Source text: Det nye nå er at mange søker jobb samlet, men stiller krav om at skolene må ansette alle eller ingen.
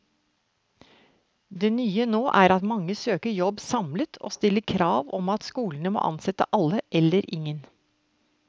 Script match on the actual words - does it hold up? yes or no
no